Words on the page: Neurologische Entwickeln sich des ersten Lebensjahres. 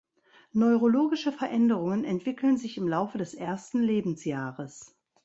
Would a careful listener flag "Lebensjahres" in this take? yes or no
no